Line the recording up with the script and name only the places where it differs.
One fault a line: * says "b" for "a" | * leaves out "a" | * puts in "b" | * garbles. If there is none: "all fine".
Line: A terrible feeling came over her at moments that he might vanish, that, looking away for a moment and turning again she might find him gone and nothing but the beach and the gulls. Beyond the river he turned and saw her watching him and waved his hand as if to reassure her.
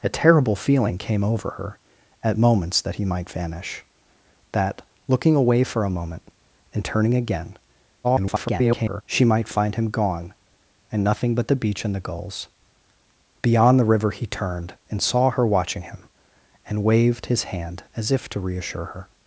* garbles